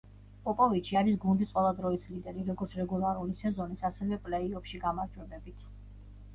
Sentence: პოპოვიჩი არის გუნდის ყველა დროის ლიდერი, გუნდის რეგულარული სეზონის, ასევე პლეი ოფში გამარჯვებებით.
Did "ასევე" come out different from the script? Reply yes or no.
no